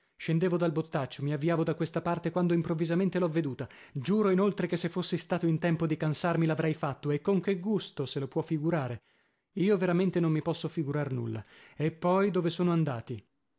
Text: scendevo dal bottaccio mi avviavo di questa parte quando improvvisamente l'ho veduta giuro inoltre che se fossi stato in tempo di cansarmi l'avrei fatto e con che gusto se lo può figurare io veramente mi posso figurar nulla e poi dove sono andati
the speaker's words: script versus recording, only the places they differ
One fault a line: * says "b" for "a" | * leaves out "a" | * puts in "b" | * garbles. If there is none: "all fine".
* says "da" for "di"
* puts in "non"